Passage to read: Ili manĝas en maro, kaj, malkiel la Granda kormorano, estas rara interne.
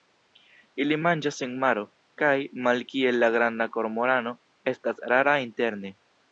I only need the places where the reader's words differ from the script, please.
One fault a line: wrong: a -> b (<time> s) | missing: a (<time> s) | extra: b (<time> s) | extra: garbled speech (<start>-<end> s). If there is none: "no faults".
no faults